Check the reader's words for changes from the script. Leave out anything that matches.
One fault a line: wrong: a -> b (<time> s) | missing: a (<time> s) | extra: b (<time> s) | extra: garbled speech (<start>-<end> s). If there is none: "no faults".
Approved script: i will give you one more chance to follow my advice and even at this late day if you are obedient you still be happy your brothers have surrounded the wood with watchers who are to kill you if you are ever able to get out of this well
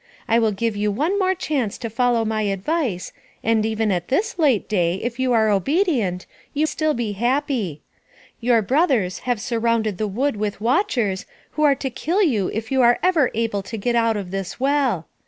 no faults